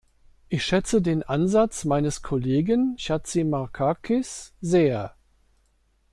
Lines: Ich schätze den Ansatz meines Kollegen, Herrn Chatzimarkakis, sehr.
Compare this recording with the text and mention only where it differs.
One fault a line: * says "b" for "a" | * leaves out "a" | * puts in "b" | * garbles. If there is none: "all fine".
* leaves out "Herrn"